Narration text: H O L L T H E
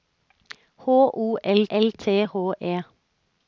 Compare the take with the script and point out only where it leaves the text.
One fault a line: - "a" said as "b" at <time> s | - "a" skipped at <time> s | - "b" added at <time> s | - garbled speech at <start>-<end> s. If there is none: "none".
none